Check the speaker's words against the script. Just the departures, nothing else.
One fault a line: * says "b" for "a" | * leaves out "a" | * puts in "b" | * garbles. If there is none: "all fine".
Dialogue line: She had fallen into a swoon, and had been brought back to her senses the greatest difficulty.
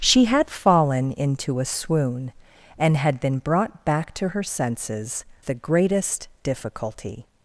all fine